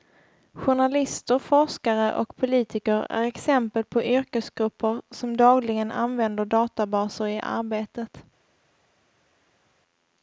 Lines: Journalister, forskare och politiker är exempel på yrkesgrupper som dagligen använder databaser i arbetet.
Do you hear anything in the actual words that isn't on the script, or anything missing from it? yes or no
no